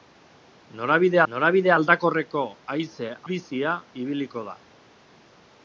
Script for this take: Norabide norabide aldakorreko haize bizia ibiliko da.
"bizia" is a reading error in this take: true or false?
false